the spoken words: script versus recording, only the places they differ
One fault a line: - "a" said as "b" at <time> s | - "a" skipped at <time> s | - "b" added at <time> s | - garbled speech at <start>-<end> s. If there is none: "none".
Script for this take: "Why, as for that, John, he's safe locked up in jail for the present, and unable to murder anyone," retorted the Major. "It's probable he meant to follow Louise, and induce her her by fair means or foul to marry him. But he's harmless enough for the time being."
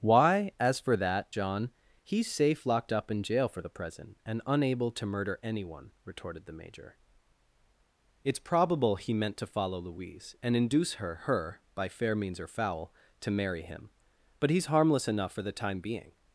none